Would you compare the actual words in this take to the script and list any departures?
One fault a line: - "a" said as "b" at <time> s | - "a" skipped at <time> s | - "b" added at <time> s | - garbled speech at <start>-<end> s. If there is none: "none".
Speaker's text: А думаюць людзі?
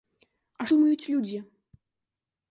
none